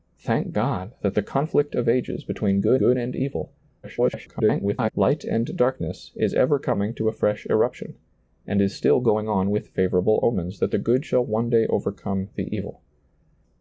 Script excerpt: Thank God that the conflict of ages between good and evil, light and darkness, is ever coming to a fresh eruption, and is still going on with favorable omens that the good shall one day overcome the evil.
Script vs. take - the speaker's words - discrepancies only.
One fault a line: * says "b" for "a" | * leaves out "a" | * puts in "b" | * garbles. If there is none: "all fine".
* puts in "good"
* garbles